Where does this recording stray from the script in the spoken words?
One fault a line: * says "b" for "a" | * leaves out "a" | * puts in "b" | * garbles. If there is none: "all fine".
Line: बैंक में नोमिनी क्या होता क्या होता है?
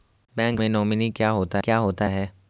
all fine